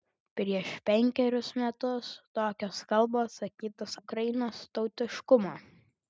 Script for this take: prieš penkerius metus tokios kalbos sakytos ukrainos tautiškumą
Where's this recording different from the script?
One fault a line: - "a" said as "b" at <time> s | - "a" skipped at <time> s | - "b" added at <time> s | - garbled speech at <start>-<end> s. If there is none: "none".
none